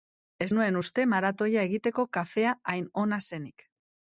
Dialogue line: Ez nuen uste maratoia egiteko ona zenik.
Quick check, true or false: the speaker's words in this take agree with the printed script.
false